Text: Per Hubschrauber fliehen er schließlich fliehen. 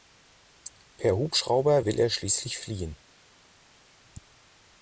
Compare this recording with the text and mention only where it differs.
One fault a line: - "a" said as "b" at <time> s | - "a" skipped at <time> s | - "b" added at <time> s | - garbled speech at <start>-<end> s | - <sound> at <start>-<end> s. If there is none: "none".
- "fliehen" said as "will" at 1.8 s